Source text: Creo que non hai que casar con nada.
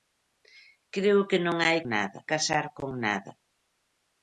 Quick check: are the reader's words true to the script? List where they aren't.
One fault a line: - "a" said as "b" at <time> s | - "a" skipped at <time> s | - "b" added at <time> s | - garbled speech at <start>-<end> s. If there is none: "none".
- "que" said as "nada" at 1.9 s